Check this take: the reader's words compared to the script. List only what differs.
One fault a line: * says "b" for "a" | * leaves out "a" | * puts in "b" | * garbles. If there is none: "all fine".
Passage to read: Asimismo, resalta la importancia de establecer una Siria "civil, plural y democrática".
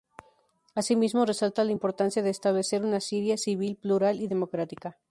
all fine